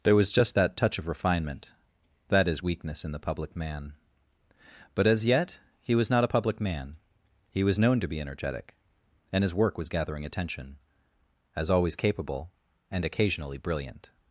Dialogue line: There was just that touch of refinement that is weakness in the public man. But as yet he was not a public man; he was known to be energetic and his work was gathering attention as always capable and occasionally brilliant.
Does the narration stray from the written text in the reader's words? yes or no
no